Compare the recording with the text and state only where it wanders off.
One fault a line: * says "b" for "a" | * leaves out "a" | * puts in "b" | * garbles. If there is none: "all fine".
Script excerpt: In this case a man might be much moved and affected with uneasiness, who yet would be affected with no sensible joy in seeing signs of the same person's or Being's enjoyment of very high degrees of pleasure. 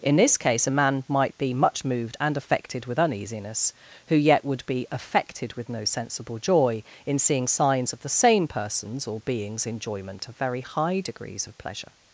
all fine